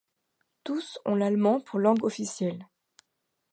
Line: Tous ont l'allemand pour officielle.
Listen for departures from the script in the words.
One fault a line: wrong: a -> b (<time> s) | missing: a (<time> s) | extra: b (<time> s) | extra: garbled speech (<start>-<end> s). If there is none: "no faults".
extra: langue (1.8 s)